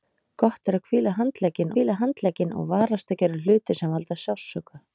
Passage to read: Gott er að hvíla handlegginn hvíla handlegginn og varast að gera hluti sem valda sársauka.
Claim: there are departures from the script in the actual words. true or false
false